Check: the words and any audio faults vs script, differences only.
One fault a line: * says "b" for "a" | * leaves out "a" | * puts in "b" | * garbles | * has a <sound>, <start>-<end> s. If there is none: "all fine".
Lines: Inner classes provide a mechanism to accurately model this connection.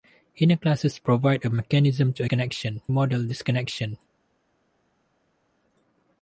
* says "connection" for "accurately"